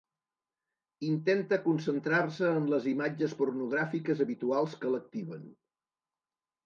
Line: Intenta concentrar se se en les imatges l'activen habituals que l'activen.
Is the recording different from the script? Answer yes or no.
yes